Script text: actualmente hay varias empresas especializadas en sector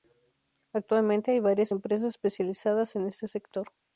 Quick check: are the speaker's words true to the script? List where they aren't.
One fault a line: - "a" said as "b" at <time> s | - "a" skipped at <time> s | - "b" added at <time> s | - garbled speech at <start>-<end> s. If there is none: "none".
- "este" added at 3.1 s